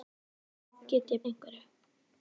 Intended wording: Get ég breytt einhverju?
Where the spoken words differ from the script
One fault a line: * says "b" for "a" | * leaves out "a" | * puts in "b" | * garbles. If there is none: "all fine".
* leaves out "breytt"